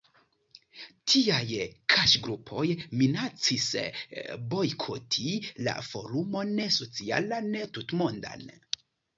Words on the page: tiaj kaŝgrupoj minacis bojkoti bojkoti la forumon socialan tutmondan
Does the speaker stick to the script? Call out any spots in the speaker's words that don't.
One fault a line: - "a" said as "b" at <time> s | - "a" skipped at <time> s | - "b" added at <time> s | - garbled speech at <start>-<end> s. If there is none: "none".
- "bojkoti" skipped at 5.4 s